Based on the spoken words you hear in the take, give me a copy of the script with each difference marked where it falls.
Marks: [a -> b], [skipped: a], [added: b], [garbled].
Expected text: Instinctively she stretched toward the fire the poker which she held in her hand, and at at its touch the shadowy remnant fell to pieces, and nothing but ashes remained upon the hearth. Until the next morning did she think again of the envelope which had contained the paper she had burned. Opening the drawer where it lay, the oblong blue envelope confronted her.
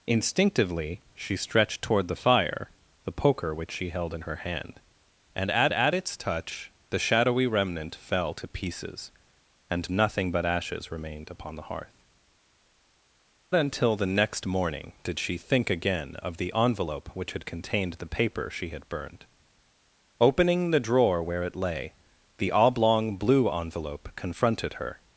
Instinctively she stretched toward the fire the poker which she held in her hand, and at at its touch the shadowy remnant fell to pieces, and nothing but ashes remained upon the hearth. Until the next morning did she think again of the envelope which had contained the paper she had burned. Opening the drawer where it lay, the oblong blue envelope confronted her.